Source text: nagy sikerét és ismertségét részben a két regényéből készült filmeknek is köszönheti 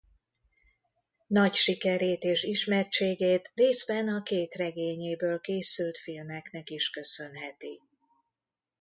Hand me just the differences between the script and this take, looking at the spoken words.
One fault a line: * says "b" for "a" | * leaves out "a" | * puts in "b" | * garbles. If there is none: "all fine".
all fine